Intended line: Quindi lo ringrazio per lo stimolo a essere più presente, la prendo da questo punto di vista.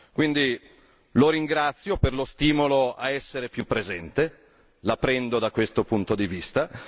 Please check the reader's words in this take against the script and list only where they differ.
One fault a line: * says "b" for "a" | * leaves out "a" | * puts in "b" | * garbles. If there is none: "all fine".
all fine